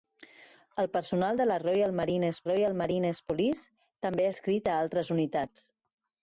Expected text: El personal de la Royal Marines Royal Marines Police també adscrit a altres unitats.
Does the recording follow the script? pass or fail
pass